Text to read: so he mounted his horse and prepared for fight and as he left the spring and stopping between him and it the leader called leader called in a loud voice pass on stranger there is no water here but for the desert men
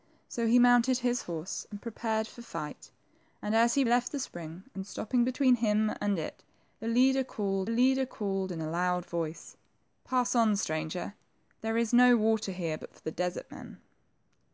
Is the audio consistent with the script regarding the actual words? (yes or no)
yes